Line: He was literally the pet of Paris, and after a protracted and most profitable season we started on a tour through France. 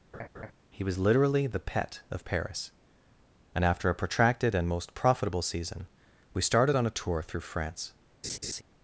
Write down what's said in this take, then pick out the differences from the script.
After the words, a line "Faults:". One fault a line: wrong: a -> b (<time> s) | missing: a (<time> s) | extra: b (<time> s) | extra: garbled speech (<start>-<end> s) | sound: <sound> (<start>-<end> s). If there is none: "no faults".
He was literally the pet of Paris, and after a protracted and most profitable season we started on a tour through France.
Faults:
sound: laugh (0.1-0.5 s)
sound: laugh (8.2-8.6 s)